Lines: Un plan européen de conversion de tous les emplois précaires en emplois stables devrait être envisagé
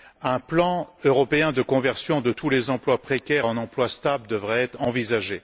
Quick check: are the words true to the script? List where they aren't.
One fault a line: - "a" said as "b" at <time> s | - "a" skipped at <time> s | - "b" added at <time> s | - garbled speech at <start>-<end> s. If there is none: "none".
none